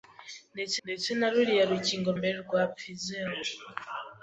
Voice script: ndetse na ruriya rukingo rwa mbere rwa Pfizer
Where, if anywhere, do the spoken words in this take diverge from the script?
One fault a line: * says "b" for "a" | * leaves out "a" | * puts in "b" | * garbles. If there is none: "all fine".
* puts in "ndetse"
* leaves out "rwa"